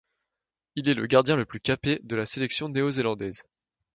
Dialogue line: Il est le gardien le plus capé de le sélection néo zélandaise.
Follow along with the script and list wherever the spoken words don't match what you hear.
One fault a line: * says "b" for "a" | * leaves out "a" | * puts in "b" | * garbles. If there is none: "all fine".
* says "la" for "le"